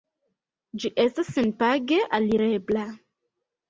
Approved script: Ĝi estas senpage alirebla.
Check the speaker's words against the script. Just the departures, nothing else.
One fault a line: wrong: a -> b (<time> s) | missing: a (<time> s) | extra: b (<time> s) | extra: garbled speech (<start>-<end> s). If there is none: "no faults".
no faults